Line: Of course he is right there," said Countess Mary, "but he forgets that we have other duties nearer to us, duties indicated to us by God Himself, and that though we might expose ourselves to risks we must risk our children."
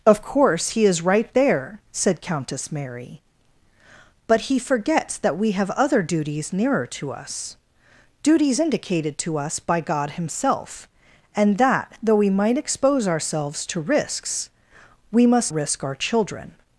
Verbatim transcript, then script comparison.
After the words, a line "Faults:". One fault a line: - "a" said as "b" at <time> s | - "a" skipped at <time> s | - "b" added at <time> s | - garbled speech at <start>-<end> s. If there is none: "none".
Of course he is right there," said Countess Mary, "but he forgets that we have other duties nearer to us, duties indicated to us by God Himself, and that though we might expose ourselves to risks we must risk our children."
Faults:
none